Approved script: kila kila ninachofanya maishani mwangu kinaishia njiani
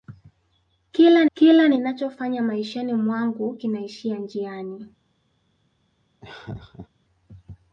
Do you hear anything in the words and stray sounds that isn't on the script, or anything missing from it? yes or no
yes